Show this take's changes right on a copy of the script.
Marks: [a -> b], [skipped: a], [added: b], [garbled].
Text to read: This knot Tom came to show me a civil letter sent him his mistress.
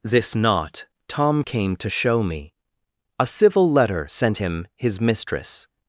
This knot Tom came to show me a civil letter sent him his mistress.